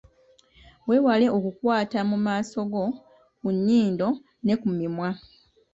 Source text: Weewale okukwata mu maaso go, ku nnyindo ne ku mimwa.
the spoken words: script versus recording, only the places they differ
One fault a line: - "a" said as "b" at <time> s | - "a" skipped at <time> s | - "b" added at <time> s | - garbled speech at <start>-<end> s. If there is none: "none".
none